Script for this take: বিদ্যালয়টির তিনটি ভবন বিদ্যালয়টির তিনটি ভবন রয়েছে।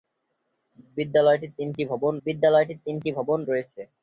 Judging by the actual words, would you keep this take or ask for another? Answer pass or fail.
pass